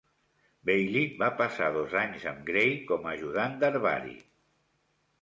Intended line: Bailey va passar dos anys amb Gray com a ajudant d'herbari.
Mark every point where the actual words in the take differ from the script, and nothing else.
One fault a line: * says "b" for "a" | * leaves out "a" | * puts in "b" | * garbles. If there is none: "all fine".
all fine